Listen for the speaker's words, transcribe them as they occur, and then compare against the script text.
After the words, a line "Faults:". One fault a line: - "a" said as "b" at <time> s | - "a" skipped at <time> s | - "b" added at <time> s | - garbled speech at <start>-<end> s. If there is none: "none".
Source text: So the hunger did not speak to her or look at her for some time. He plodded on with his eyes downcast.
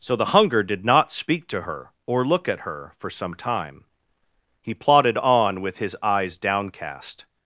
So the hunger did not speak to her or look at her for some time. He plodded on with his eyes downcast.
Faults:
none